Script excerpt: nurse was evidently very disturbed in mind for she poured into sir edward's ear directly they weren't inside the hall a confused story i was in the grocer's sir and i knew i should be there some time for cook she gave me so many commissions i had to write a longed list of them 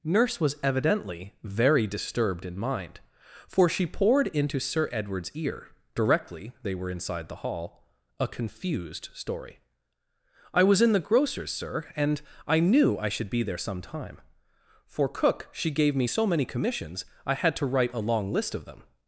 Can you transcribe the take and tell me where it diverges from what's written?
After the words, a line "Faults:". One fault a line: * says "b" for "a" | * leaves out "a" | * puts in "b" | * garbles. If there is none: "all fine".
nurse was evidently very disturbed in mind for she poured into sir edward's ear directly they were inside the hall a confused story i was in the grocer's sir and i knew i should be there some time for cook she gave me so many commissions i had to write a long list of them
Faults:
* says "were" for "weren't"
* says "long" for "longed"